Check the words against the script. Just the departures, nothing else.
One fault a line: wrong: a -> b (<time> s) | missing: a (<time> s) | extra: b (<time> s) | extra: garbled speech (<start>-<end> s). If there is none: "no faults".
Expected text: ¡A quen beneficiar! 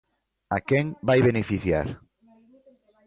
extra: vai (1.1 s)